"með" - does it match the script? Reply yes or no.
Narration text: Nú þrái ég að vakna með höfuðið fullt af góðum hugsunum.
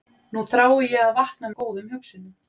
no